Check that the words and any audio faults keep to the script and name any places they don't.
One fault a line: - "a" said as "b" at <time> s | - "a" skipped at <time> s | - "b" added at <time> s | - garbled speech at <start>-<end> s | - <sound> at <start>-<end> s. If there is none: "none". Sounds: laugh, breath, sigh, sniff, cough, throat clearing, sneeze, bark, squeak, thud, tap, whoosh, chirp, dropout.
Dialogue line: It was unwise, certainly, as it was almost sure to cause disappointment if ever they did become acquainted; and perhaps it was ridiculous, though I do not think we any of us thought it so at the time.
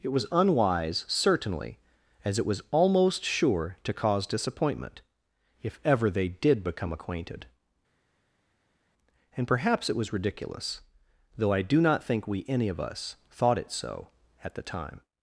none